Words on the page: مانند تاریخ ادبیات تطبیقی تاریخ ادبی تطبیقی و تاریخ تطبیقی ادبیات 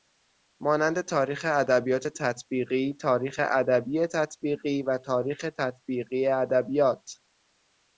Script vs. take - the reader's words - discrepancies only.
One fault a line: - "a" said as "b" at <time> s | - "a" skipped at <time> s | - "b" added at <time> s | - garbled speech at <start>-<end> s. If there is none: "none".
none